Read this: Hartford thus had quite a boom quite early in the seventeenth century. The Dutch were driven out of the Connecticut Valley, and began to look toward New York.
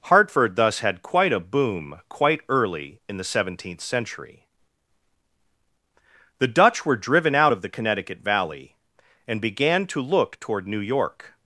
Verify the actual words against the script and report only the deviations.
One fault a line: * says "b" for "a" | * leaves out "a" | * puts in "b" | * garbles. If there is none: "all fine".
all fine